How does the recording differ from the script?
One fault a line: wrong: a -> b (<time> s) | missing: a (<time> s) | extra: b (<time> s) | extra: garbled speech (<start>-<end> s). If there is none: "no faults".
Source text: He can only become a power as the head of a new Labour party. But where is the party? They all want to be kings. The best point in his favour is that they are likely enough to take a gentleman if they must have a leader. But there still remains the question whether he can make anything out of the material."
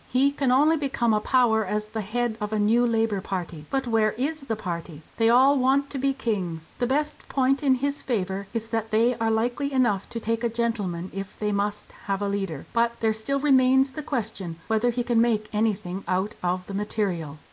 no faults